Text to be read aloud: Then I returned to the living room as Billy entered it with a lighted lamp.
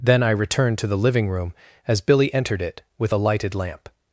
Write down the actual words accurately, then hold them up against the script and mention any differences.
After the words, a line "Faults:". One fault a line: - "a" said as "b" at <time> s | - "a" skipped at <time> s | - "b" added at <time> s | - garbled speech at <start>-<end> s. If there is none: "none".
Then I returned to the living room as Billy entered it with a lighted lamp.
Faults:
none